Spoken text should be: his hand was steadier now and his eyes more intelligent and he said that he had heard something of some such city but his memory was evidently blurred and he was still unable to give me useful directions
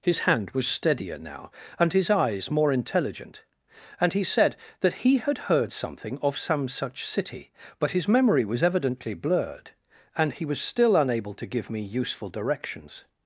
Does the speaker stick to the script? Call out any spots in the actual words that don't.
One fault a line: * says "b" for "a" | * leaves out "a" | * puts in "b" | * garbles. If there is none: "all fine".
all fine